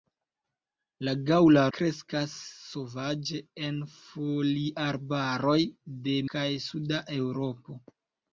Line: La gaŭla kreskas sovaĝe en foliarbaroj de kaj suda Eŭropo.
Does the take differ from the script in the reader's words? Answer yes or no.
no